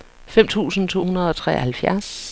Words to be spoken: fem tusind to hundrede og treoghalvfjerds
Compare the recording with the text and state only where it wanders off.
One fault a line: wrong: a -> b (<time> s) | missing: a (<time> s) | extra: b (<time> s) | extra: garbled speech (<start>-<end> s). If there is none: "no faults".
no faults